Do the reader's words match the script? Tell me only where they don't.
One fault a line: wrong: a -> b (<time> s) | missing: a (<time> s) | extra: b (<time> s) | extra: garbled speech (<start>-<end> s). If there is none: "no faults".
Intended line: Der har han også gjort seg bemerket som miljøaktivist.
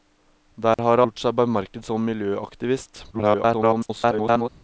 missing: han også (1.0 s)
extra: garbled speech (3.1-4.5 s)